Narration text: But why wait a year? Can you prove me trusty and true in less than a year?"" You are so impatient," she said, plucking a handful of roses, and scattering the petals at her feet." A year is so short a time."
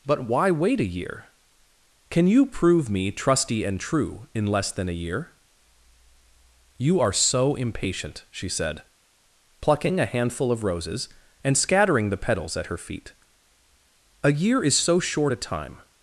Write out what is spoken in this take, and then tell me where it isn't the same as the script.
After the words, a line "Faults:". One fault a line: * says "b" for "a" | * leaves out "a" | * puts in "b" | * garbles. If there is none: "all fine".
But why wait a year? Can you prove me trusty and true in less than a year?"" You are so impatient," she said, plucking a handful of roses, and scattering the petals at her feet." A year is so short a time."
Faults:
all fine